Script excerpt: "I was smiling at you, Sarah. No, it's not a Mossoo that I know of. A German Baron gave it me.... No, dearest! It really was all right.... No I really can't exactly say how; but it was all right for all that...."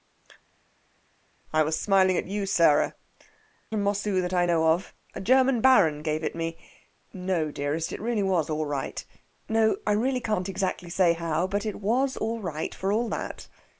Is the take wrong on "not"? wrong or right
wrong